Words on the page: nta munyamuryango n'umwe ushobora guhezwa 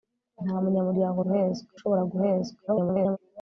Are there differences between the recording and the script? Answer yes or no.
yes